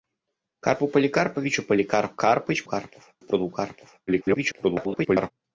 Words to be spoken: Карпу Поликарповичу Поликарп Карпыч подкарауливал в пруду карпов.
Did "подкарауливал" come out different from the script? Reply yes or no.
yes